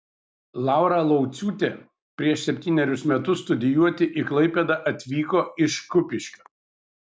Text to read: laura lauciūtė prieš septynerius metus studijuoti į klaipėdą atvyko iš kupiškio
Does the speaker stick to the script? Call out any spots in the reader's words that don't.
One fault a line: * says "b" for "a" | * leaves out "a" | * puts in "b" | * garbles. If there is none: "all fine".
all fine